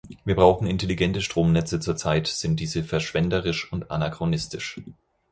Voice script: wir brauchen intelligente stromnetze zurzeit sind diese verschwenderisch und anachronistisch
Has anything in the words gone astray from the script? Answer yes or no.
no